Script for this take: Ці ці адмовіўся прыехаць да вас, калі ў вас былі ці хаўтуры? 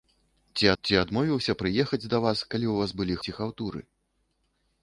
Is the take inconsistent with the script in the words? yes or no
no